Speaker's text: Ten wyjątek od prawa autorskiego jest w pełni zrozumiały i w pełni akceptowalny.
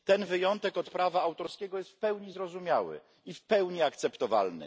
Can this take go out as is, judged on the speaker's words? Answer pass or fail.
pass